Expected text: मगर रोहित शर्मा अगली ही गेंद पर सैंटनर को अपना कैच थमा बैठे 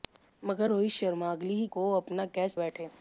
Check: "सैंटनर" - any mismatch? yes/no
yes